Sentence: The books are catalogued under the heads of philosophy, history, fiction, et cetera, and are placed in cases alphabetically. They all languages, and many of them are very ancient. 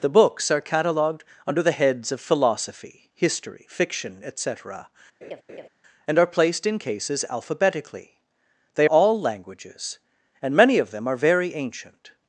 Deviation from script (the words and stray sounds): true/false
true